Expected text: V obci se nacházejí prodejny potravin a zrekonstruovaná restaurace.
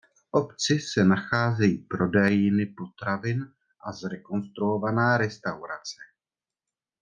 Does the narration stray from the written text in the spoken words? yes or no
no